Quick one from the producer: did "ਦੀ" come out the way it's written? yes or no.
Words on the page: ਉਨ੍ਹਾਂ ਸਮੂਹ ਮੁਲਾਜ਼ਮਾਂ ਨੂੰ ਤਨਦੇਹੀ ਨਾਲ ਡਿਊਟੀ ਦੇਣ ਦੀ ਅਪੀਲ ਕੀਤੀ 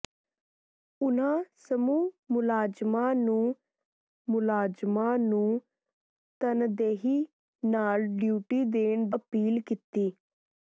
no